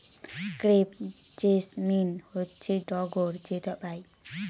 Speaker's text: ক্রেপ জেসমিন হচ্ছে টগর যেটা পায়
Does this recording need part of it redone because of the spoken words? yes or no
no